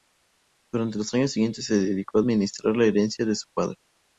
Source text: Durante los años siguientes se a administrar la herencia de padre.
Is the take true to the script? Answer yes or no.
no